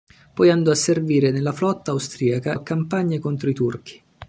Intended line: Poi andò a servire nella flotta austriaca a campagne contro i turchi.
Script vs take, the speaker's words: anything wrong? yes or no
no